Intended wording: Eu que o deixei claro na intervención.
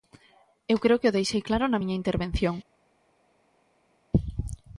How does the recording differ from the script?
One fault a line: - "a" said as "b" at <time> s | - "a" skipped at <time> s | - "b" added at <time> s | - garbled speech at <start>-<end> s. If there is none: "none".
- "creo" added at 0.8 s
- "miña" added at 1.8 s